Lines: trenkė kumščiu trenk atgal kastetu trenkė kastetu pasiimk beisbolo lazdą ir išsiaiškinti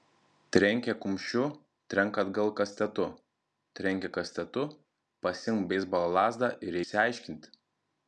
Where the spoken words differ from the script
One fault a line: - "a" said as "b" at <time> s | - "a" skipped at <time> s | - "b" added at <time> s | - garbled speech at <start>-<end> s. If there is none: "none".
none